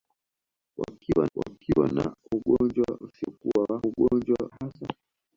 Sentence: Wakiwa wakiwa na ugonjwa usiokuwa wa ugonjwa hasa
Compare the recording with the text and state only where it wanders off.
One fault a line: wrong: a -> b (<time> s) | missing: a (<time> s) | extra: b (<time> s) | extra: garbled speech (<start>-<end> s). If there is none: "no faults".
no faults